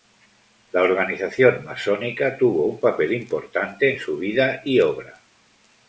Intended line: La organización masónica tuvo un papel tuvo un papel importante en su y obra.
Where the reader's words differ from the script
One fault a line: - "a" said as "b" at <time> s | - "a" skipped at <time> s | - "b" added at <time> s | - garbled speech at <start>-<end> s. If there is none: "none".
- "tuvo un papel" skipped at 3.1 s
- "vida" added at 4.2 s